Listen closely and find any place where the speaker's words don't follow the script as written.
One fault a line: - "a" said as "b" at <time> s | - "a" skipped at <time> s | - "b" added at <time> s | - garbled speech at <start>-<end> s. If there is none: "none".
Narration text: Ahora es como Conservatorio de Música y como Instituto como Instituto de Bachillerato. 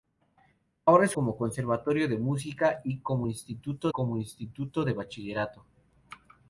none